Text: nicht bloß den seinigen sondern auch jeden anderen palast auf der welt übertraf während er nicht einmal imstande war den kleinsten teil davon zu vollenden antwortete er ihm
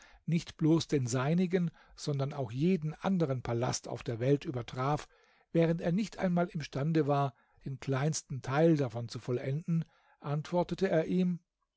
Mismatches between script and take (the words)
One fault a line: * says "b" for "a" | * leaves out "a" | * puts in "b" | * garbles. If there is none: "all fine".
all fine